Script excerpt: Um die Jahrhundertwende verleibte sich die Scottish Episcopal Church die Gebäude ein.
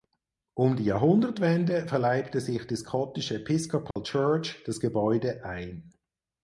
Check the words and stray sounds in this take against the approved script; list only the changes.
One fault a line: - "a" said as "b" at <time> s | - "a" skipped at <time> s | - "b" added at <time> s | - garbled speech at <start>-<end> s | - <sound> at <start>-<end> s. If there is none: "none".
- dropout at 3.9-4.0 s
- "die" said as "das" at 4.6 s